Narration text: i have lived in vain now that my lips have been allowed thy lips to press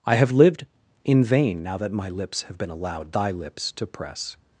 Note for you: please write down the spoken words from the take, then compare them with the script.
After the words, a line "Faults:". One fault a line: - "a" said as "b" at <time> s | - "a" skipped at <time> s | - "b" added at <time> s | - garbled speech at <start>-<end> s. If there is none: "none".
i have lived in vain now that my lips have been allowed thy lips to press
Faults:
none